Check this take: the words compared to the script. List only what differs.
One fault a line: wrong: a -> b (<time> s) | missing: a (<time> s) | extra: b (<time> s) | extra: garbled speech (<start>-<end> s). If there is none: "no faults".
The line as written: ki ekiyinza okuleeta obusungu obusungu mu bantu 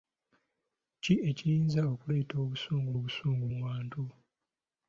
no faults